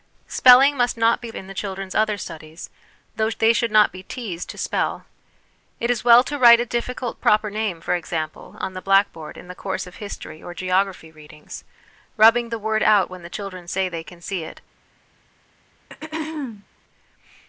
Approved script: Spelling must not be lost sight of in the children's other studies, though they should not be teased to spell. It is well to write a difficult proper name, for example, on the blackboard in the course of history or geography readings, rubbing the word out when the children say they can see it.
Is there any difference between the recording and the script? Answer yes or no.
yes